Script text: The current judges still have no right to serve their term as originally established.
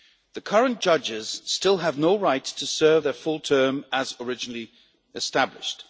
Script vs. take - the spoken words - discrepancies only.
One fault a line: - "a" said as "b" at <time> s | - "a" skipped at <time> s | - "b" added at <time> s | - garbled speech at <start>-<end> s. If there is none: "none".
- "full" added at 3.1 s